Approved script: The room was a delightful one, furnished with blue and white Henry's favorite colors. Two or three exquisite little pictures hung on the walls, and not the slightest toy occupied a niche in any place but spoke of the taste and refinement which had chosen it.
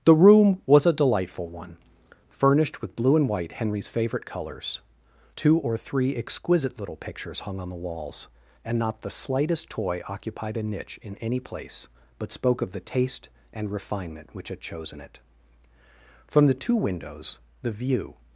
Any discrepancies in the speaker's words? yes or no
yes